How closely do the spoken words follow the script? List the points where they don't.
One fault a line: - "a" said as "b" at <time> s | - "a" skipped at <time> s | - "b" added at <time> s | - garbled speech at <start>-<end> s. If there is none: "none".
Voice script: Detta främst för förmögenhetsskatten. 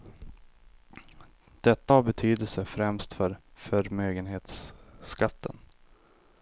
- "har betydelse" added at 1.9 s